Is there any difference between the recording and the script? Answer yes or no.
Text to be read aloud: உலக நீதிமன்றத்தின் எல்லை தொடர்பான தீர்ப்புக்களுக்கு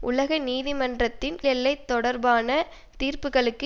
no